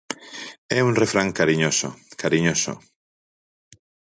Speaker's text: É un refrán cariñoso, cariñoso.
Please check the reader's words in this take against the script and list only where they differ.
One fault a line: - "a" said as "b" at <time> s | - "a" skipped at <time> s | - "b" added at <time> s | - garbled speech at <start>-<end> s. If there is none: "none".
none